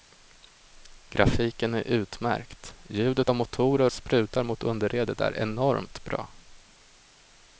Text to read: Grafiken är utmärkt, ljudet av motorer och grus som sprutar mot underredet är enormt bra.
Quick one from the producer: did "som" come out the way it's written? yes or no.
no